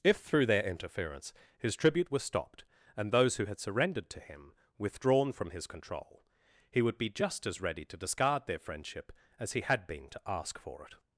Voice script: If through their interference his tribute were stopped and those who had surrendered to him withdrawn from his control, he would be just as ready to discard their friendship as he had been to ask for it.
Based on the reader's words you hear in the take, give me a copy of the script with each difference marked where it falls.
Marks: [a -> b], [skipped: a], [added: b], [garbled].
If through their interference his tribute [were -> was] stopped and those who had surrendered to him withdrawn from his control, he would be just as ready to discard their friendship as he had been to ask for it.